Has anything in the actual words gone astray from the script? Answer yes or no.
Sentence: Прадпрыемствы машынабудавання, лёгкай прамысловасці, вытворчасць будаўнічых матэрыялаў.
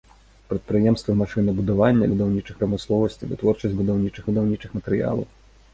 yes